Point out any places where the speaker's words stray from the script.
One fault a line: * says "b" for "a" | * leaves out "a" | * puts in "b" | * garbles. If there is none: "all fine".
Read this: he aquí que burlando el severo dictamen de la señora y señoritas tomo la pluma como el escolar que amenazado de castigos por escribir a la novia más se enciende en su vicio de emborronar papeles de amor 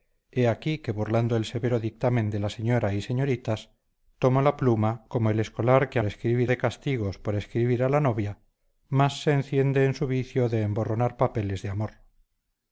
* says "escribir" for "amenazado"